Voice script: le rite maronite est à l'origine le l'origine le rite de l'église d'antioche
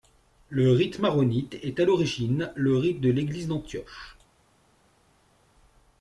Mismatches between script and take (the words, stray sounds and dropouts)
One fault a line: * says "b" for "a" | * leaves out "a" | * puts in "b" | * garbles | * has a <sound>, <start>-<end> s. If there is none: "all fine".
* leaves out "l'origine le"